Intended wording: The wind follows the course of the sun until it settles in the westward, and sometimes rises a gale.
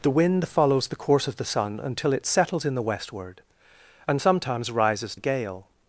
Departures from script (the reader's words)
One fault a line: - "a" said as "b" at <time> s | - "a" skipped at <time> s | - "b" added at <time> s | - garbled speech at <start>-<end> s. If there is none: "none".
none